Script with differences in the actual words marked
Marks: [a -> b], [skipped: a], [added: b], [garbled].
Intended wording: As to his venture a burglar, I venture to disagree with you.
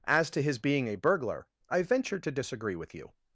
As to his [venture -> being] a burglar, I venture to disagree with you.